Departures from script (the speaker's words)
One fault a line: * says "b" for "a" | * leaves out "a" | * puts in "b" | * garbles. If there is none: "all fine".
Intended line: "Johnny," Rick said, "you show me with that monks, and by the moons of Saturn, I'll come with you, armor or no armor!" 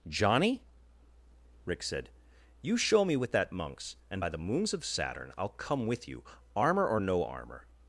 all fine